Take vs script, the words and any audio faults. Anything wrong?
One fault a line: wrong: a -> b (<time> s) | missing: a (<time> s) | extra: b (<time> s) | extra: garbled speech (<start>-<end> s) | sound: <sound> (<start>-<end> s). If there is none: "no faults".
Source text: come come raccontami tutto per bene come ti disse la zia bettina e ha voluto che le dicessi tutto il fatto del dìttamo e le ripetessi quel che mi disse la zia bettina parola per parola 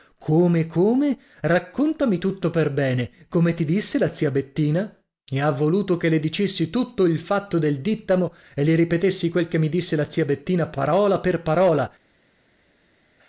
no faults